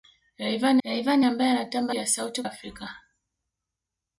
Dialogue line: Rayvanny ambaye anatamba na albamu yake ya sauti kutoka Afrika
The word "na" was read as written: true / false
false